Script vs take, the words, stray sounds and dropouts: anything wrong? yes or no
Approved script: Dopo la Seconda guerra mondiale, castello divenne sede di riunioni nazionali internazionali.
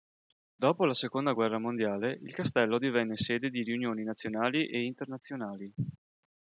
yes